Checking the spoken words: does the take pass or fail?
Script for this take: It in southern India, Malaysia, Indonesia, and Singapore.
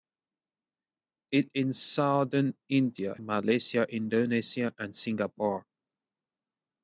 pass